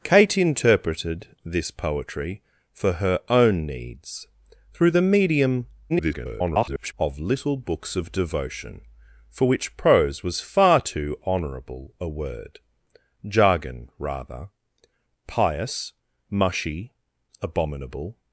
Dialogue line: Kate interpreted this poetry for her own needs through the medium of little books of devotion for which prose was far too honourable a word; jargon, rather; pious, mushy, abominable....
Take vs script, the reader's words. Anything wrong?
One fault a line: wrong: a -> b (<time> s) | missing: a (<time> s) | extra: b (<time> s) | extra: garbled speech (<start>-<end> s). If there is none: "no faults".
extra: garbled speech (5.9-6.9 s)